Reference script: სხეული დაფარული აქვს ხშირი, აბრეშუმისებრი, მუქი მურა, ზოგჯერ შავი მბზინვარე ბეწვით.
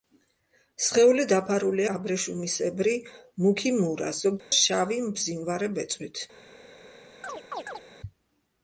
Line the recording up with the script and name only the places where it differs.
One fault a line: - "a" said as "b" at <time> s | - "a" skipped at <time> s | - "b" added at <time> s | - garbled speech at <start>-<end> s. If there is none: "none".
- "აქვს ხშირი" skipped at 1.8 s